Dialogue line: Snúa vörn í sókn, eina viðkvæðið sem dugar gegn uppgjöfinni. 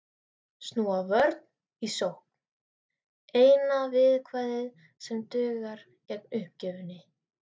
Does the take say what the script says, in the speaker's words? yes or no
yes